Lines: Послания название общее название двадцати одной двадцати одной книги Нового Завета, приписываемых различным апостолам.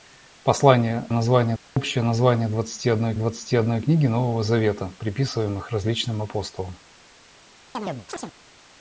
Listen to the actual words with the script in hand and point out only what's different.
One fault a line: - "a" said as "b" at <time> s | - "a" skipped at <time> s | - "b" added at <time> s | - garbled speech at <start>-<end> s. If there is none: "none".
none